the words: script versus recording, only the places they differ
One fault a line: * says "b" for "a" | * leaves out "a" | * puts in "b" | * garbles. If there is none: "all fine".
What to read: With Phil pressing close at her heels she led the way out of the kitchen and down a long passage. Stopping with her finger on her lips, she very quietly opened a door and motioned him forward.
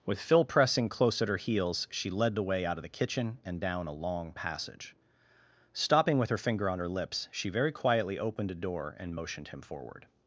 all fine